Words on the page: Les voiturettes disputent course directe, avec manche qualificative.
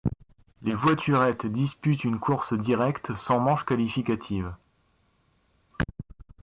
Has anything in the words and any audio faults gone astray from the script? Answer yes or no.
yes